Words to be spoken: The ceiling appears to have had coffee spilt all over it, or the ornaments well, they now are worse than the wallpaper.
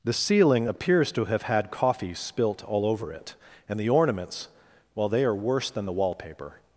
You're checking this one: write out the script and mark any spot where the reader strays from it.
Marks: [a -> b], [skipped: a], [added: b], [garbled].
The ceiling appears to have had coffee spilt all over it, [or -> and] the ornaments well, they [skipped: now] are worse than the wallpaper.